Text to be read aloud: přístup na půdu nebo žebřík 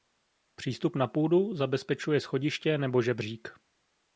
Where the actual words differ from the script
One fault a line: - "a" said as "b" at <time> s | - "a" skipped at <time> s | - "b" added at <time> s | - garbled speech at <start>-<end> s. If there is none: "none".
- "zabezpečuje schodiště" added at 1.6 s